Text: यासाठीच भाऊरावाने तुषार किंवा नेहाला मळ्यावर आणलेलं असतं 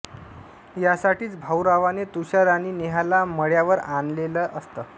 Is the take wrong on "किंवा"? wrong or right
wrong